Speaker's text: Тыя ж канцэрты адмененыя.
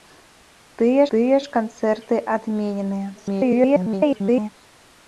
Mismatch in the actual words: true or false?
true